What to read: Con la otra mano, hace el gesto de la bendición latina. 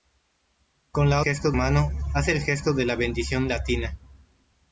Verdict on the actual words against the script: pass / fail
fail